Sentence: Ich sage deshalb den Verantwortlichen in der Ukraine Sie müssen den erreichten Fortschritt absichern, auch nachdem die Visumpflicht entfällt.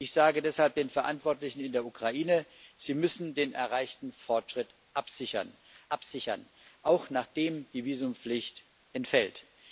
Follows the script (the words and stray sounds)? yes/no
no